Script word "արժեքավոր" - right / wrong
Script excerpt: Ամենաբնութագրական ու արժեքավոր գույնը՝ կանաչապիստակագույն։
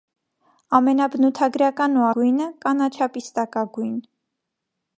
wrong